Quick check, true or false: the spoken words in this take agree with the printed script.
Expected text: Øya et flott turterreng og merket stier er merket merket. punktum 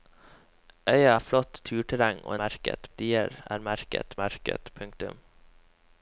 true